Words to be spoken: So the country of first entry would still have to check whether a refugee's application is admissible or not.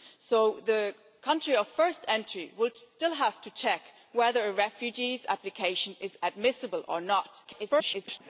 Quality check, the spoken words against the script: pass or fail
fail